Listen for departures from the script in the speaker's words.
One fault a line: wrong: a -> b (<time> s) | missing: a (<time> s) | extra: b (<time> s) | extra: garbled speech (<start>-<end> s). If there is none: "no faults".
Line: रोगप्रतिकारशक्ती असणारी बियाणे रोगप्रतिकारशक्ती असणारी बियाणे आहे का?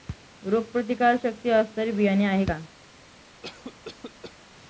missing: रोगप्रतिकारशक्ती असणारी बियाणे (2.2 s)